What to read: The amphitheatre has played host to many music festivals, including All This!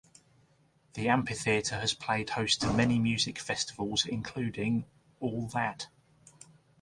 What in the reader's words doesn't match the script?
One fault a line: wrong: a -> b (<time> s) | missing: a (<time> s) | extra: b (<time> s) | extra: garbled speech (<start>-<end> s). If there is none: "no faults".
wrong: This -> That (5.5 s)